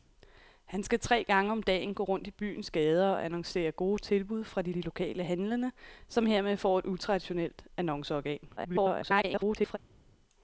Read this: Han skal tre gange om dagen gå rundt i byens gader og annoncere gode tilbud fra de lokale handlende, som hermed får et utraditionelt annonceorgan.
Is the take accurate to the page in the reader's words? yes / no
no